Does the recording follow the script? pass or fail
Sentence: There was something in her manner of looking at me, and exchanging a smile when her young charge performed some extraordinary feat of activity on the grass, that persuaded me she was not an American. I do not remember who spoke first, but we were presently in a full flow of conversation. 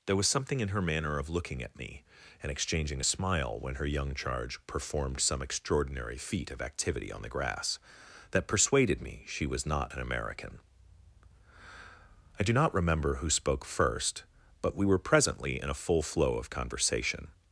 pass